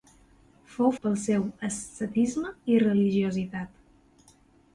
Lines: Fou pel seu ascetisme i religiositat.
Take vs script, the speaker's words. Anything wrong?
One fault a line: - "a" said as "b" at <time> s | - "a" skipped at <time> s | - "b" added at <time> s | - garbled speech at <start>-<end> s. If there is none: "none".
none